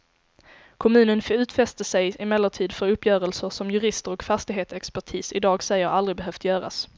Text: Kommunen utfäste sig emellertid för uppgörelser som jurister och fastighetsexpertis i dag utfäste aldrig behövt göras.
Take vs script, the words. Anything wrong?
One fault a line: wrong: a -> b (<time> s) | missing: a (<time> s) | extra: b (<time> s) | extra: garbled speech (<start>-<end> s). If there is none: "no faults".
wrong: utfäste -> säger (5.6 s)